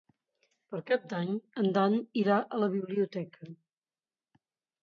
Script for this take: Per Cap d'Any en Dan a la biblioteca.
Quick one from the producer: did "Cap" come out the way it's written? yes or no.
yes